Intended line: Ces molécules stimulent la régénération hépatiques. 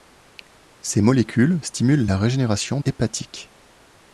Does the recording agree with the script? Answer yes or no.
yes